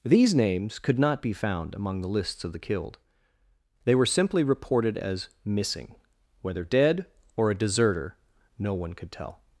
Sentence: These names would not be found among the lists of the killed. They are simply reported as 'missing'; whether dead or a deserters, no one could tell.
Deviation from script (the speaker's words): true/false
true